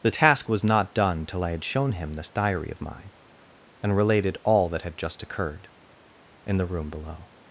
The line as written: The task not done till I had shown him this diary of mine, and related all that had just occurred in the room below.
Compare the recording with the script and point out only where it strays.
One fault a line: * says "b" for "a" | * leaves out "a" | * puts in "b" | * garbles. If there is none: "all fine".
* puts in "was"